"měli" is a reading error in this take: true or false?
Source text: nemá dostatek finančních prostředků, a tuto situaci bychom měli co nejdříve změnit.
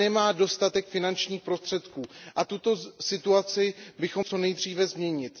true